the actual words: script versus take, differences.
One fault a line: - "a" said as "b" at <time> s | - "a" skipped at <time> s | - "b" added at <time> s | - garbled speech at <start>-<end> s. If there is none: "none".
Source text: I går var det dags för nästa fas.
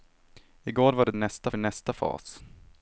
- "dags" said as "nästa" at 1.2 s